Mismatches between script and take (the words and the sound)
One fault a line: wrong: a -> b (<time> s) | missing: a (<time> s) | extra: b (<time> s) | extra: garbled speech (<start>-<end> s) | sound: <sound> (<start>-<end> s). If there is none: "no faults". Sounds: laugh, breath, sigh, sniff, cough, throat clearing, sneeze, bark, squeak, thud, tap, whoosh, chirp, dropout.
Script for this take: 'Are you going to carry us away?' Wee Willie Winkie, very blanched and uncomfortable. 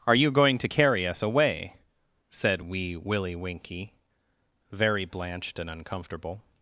extra: said (2.3 s)